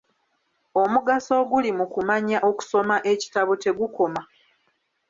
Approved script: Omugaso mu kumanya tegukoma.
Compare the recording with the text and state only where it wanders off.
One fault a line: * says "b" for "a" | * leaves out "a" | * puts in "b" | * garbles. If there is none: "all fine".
* puts in "oguli"
* puts in "okusoma ekitabo"